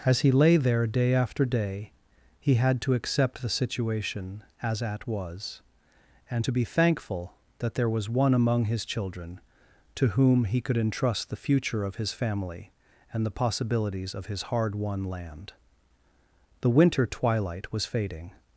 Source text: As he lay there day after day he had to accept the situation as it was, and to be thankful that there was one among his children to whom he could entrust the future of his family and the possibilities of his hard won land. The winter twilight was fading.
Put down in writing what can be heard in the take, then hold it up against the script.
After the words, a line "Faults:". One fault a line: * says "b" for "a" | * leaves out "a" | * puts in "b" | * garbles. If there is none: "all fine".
As he lay there day after day he had to accept the situation as at was, and to be thankful that there was one among his children to whom he could entrust the future of his family and the possibilities of his hard won land. The winter twilight was fading.
Faults:
* says "at" for "it"